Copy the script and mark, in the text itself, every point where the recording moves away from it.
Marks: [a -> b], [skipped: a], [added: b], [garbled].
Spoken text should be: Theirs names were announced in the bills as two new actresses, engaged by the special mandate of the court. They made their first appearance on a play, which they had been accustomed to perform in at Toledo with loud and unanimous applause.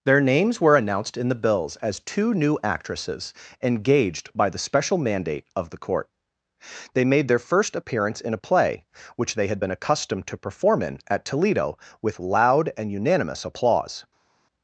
[Theirs -> Their] names were announced in the bills as two new actresses, engaged by the special mandate of the court. They made their first appearance [on -> in] a play, which they had been accustomed to perform in at Toledo with loud and unanimous applause.